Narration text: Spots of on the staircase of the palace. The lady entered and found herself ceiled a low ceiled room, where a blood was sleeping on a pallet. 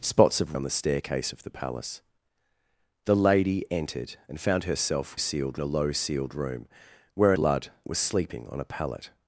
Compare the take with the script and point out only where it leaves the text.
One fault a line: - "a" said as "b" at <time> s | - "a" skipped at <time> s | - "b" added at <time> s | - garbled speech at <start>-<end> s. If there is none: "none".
none